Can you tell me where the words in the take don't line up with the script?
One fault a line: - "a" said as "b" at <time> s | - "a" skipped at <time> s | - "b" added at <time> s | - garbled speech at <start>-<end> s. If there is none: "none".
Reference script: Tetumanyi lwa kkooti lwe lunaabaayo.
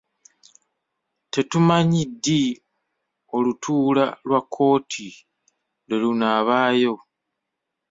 - "ddi olutuula" added at 2.1 s